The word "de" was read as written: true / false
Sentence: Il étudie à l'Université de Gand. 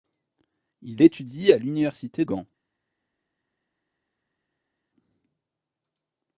false